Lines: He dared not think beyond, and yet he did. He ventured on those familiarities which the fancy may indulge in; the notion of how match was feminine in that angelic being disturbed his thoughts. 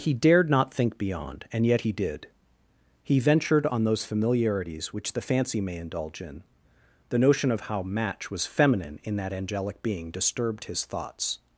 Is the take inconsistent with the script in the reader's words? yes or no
no